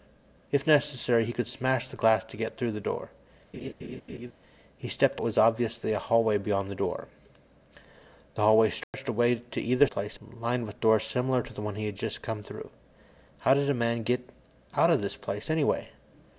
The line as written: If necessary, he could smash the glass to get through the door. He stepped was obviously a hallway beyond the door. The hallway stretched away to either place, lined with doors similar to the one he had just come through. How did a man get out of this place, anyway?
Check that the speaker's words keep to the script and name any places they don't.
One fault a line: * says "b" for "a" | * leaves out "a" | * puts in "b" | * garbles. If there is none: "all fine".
all fine